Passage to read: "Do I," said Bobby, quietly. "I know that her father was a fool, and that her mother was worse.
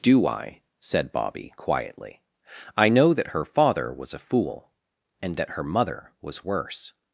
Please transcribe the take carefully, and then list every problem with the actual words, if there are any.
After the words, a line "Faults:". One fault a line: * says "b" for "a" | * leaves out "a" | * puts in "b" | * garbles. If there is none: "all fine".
"Do I," said Bobby, quietly. "I know that her father was a fool, and that her mother was worse.
Faults:
all fine